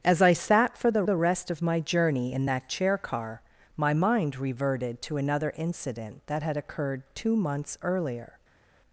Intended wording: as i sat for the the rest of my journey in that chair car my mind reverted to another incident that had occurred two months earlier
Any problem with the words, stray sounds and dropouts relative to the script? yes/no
no